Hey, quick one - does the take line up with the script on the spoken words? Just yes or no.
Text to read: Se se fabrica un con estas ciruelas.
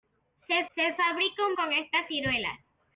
yes